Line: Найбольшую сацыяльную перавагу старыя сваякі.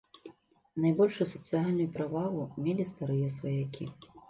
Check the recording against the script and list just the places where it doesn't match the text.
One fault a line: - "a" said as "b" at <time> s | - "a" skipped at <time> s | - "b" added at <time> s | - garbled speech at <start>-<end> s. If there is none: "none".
- "мелі" added at 2.7 s